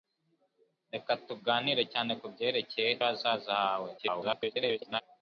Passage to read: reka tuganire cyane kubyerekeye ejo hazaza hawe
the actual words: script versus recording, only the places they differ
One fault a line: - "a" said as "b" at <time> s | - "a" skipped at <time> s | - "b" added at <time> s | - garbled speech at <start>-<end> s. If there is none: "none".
- "ejo" skipped at 2.9 s
- garbled speech at 4.0-5.0 s